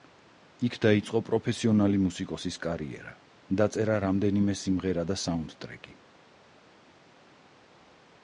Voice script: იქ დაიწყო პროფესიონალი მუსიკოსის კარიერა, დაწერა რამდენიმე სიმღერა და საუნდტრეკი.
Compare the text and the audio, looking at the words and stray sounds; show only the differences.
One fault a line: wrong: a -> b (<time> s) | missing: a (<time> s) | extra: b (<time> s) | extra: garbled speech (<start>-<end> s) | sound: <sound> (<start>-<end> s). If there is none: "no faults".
no faults